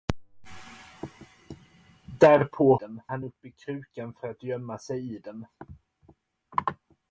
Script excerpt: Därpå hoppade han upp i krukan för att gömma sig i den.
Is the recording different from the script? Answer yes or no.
yes